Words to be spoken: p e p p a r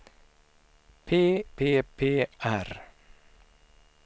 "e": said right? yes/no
no